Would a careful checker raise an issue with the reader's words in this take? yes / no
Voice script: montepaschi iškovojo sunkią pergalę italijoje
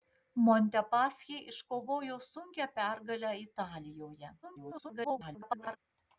yes